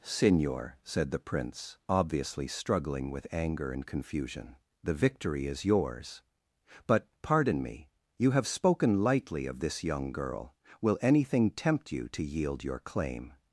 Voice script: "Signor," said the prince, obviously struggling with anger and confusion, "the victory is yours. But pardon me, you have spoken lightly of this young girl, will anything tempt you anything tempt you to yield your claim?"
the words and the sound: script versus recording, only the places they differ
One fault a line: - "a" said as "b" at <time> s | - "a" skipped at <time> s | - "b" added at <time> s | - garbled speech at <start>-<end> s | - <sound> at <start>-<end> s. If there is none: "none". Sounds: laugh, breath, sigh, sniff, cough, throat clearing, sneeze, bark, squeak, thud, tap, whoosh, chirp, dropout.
- "anything tempt you" skipped at 12.1 s